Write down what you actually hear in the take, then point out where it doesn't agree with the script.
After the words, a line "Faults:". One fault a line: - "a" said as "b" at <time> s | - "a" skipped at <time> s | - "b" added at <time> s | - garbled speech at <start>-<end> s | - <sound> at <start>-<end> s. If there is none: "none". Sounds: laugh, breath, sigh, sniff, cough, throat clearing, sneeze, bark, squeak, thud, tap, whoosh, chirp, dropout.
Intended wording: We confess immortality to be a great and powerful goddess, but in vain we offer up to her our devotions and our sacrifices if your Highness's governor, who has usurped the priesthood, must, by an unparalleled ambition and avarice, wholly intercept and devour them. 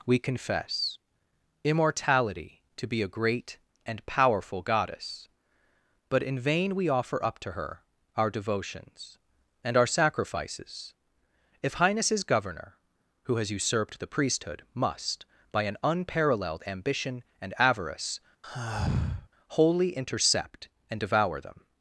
We confess immortality to be a great and powerful goddess, but in vain we offer up to her our devotions and our sacrifices if Highness's governor, who has usurped the priesthood, must, by an unparalleled ambition and avarice, wholly intercept and devour them.
Faults:
- "your" skipped at 11.8 s
- sigh at 18.4-19.3 s